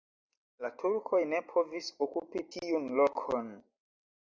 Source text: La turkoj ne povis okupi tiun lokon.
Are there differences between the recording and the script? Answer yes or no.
no